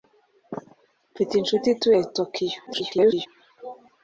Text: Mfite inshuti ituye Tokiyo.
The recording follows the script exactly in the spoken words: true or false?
false